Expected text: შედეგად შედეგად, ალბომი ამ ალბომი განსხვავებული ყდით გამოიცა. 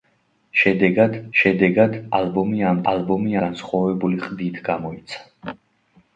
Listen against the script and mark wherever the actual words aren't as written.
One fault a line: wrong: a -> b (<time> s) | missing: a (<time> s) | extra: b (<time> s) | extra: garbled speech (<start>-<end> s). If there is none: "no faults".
no faults